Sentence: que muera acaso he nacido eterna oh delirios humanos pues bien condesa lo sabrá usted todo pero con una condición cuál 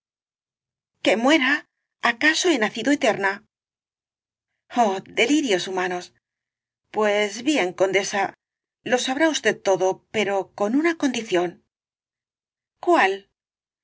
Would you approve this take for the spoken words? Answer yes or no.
yes